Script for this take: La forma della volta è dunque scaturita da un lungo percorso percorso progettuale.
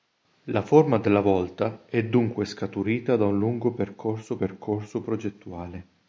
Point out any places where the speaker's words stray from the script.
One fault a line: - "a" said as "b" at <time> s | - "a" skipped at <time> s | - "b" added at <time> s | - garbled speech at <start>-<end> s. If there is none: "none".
none